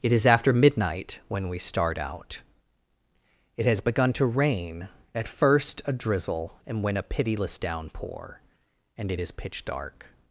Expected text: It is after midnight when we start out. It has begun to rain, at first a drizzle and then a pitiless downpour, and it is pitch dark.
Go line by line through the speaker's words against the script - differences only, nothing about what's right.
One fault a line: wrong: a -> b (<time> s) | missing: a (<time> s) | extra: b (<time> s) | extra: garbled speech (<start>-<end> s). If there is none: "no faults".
wrong: then -> when (6.8 s)